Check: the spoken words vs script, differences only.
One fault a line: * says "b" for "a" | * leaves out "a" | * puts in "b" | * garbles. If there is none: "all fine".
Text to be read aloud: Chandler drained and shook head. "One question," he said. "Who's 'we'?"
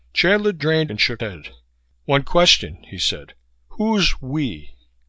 all fine